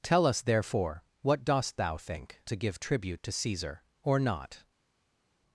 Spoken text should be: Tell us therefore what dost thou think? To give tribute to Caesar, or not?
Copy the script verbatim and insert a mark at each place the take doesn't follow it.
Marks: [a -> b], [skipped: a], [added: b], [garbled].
Tell us therefore what dost thou think? To give tribute to Caesar, or not?